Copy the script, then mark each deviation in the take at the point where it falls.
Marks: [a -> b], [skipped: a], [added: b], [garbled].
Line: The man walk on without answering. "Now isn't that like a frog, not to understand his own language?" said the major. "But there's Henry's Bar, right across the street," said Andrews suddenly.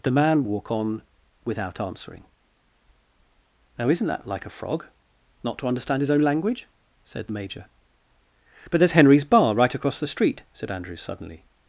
The man walk on without answering. "Now isn't that like a frog, not to understand his own language?" said the major. "But there's Henry's Bar, right across the street," said Andrews suddenly.